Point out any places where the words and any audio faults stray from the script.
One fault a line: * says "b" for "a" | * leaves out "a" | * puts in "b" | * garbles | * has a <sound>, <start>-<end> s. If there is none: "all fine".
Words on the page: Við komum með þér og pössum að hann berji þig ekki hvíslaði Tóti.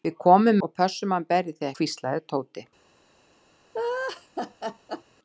* leaves out "með þér"
* leaves out "ekki"
* has a laugh, 3.7-5.0 s